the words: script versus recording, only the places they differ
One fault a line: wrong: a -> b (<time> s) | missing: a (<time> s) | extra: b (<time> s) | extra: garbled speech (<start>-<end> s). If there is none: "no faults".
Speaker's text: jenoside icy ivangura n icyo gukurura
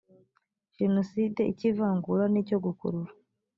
no faults